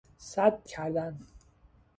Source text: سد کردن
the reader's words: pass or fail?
pass